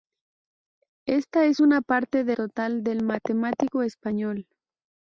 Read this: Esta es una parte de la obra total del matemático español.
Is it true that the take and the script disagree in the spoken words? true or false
true